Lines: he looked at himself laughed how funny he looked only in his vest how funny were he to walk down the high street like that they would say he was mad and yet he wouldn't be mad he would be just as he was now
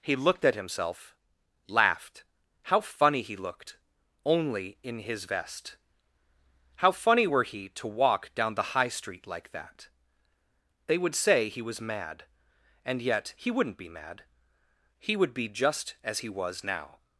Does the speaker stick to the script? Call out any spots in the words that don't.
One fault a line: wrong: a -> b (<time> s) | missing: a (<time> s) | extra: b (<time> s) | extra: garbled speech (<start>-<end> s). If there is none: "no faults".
no faults